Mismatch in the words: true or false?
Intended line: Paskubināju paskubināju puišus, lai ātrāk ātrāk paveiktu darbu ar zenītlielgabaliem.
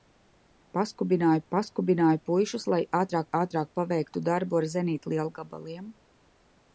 false